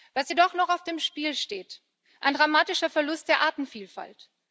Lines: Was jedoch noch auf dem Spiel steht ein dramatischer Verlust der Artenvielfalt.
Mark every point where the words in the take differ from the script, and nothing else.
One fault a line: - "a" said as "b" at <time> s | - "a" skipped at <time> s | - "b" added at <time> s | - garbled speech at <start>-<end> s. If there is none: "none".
none